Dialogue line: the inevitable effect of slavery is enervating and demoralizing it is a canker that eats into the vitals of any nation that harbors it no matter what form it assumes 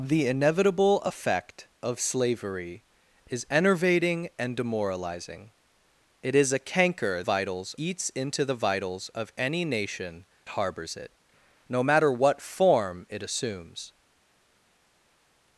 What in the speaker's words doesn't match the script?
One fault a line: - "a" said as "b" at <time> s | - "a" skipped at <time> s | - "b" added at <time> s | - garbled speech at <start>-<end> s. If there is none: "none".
- "that" said as "vitals" at 7.2 s
- "that" skipped at 10.3 s